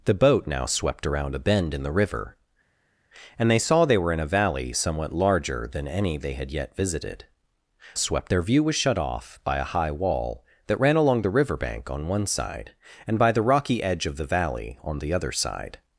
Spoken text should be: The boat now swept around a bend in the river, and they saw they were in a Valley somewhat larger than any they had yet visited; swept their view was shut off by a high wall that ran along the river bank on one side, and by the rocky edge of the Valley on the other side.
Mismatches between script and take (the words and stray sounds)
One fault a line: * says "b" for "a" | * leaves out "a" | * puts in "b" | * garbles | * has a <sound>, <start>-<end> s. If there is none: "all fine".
all fine